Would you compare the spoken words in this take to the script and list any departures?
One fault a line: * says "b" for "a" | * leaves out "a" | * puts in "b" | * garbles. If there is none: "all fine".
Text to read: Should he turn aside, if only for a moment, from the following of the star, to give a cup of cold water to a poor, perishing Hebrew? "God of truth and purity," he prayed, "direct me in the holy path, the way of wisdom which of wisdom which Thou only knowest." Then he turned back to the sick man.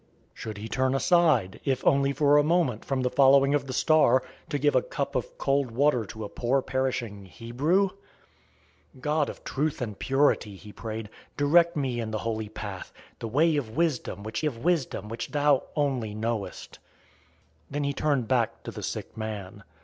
all fine